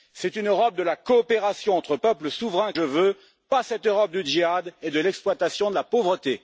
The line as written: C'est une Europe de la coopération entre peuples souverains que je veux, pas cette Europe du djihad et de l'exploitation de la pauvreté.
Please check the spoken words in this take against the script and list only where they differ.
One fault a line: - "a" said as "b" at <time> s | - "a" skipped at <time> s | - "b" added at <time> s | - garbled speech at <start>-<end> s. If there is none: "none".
- "que" skipped at 2.7 s